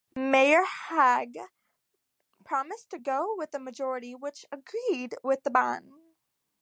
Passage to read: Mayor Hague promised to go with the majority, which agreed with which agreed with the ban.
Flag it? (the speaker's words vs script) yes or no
yes